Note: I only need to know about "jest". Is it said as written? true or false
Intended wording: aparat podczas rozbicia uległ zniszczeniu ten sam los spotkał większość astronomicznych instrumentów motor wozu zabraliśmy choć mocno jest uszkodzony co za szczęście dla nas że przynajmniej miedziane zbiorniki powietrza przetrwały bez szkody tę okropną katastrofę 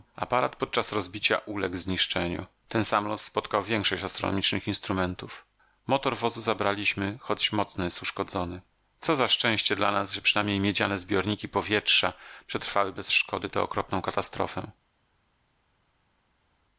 true